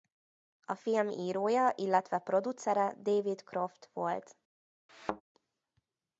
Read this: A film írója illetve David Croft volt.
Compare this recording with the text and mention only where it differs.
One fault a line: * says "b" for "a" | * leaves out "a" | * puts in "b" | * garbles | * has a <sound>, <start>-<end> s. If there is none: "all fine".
* puts in "producere"
* has a thud, 4.9-5.2 s